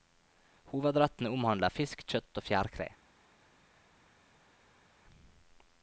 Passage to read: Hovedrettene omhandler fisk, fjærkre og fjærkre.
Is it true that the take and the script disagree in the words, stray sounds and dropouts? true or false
true